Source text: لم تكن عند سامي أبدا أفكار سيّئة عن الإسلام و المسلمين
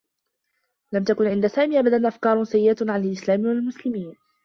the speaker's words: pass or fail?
pass